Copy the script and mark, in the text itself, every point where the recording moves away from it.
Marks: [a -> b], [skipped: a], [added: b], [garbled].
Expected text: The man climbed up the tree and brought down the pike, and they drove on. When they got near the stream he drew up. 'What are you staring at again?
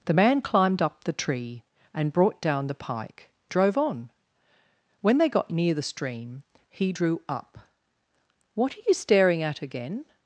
The man climbed up the tree and brought down the pike, [skipped: and they] drove on. When they got near the stream he drew up. 'What are you staring at again?